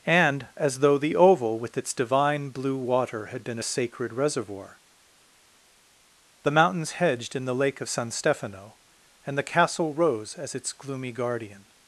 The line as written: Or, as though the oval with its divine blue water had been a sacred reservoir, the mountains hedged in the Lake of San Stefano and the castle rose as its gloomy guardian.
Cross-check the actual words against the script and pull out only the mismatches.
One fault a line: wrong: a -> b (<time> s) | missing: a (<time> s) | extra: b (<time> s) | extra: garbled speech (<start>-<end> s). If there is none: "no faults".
wrong: Or -> And (0.1 s)